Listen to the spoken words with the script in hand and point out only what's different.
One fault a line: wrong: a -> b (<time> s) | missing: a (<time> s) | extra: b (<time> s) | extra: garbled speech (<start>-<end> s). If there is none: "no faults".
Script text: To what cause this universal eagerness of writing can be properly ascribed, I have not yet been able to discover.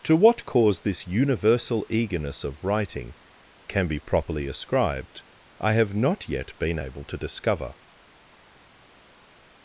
no faults